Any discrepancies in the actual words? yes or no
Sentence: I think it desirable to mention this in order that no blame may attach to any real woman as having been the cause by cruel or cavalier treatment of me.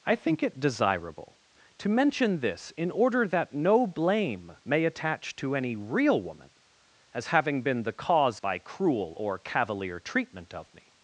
no